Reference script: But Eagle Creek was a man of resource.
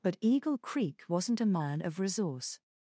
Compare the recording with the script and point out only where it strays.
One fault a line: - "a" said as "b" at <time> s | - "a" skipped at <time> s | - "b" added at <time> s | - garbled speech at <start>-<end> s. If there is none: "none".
- "was" said as "wasn't" at 1.1 s